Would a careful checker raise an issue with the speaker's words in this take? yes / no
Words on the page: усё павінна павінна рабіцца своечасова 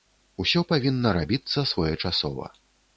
yes